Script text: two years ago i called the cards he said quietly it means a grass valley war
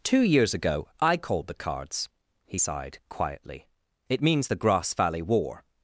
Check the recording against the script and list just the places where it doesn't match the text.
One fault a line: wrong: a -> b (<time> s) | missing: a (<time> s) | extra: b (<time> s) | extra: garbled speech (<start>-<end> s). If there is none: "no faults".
wrong: said -> sighed (2.6 s)
wrong: a -> the (4.5 s)